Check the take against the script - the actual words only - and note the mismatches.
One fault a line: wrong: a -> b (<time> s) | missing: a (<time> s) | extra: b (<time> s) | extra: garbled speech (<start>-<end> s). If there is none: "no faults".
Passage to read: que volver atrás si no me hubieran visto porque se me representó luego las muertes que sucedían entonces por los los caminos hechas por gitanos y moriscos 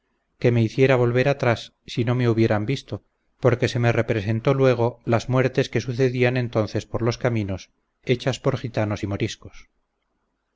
extra: me hiciera (0.5 s)
missing: los (7.2 s)